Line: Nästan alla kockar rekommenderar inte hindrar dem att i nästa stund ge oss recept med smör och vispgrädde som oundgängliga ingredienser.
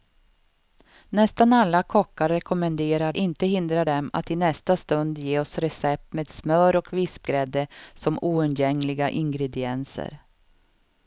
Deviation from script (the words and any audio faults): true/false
false